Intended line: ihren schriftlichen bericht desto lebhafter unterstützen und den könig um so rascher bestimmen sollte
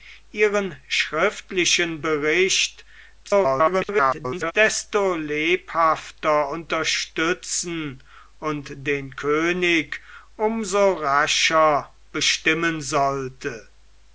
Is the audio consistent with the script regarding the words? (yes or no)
no